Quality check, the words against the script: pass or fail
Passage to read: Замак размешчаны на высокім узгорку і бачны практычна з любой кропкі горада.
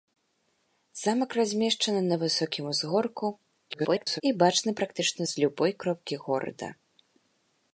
fail